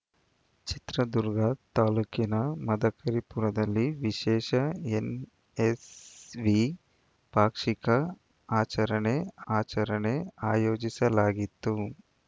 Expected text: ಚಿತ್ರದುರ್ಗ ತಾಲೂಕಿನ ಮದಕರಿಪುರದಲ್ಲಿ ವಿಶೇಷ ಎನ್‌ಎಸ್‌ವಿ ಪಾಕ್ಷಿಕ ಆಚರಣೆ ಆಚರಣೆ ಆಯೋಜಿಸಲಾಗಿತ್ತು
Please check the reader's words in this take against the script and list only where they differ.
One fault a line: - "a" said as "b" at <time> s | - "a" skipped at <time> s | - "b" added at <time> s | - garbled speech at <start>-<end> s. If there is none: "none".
none